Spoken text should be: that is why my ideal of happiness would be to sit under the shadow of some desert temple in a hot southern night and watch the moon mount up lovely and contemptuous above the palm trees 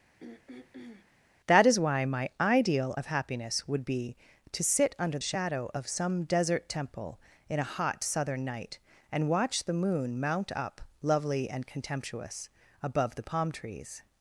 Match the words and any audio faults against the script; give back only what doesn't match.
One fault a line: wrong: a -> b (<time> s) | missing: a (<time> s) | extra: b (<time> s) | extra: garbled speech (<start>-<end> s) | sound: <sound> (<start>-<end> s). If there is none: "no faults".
sound: throat clearing (0.2-1.1 s)
missing: the (5.2 s)